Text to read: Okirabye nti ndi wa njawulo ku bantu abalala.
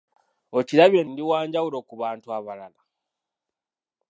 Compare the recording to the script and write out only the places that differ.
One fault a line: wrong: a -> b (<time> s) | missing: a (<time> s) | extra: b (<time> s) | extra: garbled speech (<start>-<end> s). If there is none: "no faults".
missing: nti (1.0 s)